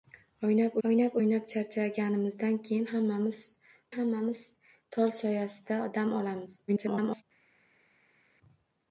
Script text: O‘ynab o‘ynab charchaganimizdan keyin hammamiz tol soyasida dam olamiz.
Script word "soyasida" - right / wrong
right